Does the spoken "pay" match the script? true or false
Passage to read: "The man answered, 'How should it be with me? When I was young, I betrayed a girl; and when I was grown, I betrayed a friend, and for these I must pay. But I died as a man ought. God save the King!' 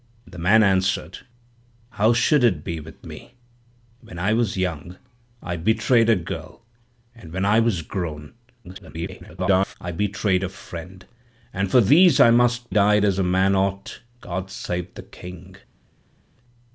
false